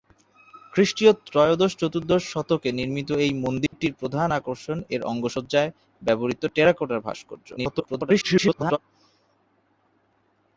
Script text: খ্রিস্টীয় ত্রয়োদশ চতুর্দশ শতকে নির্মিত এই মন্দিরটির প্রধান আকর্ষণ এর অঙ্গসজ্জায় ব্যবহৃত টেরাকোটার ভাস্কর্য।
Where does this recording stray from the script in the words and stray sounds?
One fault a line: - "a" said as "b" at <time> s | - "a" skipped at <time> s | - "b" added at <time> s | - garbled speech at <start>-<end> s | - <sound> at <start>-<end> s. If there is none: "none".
- dropout at 3.7-3.7 s
- garbled speech at 7.6-8.8 s